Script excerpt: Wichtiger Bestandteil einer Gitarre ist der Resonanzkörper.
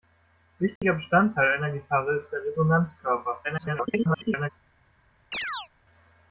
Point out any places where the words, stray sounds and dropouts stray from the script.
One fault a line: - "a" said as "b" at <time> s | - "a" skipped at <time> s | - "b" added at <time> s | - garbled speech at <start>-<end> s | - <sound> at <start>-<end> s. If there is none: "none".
- dropout at 0.8-0.8 s
- garbled speech at 3.4-4.5 s
- chirp at 5.3-5.7 s